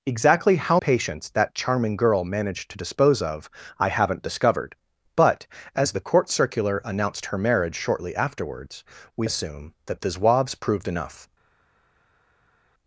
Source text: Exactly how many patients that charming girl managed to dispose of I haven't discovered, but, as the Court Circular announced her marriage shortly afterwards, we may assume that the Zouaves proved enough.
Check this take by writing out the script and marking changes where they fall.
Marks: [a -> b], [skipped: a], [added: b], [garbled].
Exactly how [skipped: many] patients that charming girl managed to dispose of I haven't discovered, but, as the Court Circular announced her marriage shortly afterwards, we [skipped: may] assume that the Zouaves proved enough.